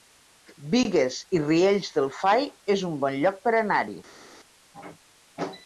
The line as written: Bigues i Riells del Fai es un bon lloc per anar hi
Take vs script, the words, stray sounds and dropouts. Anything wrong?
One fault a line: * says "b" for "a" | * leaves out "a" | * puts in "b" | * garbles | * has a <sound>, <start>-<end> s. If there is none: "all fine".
all fine